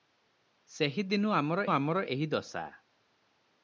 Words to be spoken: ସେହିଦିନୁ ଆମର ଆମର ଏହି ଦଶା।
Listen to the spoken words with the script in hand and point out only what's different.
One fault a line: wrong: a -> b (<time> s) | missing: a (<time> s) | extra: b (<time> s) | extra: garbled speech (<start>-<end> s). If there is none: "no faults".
no faults